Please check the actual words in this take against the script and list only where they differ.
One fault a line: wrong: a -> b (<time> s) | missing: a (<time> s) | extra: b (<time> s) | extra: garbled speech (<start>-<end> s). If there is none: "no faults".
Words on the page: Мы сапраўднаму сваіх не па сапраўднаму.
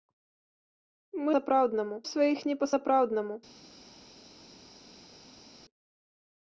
no faults